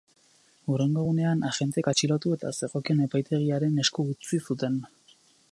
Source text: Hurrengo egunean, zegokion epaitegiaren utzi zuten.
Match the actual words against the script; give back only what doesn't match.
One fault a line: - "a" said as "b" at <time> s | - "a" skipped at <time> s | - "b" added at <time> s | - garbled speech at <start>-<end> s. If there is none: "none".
- "agenteek atxilotu eta" added at 1.5 s
- "esku" added at 3.9 s